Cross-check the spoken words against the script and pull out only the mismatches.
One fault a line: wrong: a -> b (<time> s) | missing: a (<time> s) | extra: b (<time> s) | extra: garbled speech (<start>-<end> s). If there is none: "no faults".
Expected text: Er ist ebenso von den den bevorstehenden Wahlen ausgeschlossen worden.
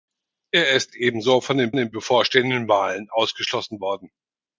no faults